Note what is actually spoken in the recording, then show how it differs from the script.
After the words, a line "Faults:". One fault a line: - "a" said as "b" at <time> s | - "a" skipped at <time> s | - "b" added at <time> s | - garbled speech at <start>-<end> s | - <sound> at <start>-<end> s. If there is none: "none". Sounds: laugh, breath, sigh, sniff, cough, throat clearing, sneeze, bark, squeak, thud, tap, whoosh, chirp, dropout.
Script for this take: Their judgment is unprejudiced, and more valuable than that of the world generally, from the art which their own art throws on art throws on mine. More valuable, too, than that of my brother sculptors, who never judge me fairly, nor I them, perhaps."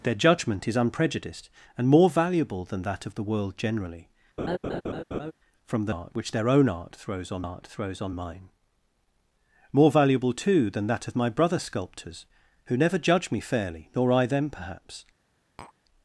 Their judgment is unprejudiced, and more valuable than that of the world generally, from the art which their own art throws on art throws on mine. More valuable, too, than that of my brother sculptors, who never judge me fairly, nor I them, perhaps."
Faults:
- laugh at 4.4-5.3 s
- tap at 15.6-15.7 s